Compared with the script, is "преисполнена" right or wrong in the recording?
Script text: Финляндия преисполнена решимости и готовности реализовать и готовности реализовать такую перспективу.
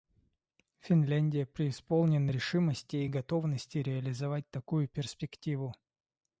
right